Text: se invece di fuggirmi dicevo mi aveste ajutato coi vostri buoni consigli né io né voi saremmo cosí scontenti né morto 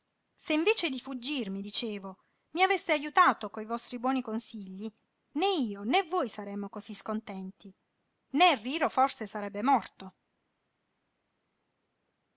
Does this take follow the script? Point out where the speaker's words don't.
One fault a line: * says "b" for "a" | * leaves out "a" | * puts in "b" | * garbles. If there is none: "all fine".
* puts in "riro forse sarebbe"